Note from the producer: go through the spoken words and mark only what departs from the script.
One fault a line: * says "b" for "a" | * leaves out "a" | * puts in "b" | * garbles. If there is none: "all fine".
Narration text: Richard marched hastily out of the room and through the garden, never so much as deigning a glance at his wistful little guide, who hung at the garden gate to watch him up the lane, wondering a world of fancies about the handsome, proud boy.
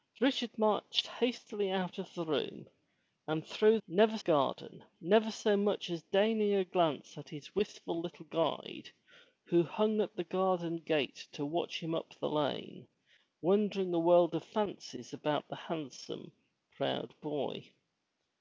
* says "never" for "the"